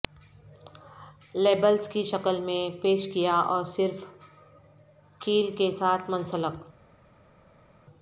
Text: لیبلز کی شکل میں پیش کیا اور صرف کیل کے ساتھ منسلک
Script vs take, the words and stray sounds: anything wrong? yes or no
no